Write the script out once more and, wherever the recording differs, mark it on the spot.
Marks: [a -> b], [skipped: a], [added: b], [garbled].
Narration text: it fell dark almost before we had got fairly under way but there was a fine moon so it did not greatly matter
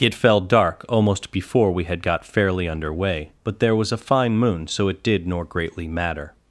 it fell dark almost before we had got fairly under way but there was a fine moon so it did [not -> nor] greatly matter